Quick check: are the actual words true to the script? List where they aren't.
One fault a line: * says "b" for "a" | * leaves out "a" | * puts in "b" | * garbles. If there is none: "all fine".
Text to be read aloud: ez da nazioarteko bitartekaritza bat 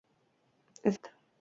* leaves out "da nazioarteko bitartekaritza"